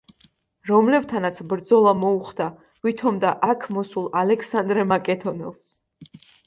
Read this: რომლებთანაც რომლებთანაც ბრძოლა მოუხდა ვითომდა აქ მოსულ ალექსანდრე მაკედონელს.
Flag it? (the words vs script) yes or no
yes